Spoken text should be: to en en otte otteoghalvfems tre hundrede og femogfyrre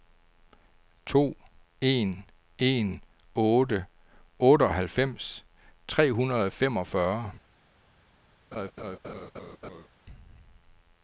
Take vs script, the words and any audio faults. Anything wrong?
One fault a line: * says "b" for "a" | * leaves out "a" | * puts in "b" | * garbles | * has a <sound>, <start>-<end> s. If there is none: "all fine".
* has a laugh, 8.5-9.9 s